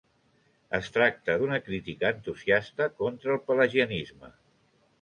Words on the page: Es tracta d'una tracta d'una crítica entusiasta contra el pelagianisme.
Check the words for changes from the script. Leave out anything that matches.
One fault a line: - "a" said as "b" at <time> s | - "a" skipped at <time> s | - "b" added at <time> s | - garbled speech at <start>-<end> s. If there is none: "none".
- "tracta d'una" skipped at 1.6 s